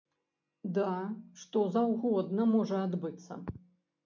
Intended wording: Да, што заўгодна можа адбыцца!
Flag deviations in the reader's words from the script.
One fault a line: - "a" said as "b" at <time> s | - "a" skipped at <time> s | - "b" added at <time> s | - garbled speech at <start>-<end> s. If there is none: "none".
none